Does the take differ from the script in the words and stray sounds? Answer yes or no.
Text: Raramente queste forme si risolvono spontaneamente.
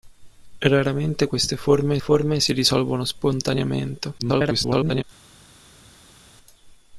yes